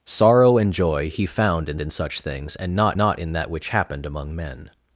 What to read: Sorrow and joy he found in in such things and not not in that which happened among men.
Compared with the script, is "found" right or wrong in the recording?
right